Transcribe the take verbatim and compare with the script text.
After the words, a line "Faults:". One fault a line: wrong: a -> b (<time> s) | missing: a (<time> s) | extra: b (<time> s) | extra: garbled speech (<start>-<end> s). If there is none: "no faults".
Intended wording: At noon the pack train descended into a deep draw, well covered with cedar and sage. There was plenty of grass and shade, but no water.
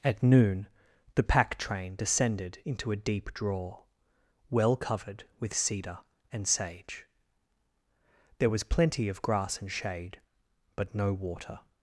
At noon the pack train descended into a deep draw, well covered with cedar and sage. There was plenty of grass and shade, but no water.
Faults:
no faults